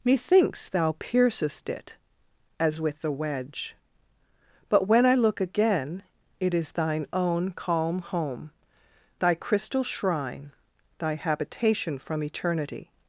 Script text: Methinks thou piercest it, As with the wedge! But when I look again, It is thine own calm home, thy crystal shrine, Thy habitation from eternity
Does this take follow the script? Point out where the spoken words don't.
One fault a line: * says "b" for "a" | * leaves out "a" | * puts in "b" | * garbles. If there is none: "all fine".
all fine